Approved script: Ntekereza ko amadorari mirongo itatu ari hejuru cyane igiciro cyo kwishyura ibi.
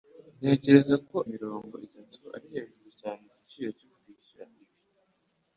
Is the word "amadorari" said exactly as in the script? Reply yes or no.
no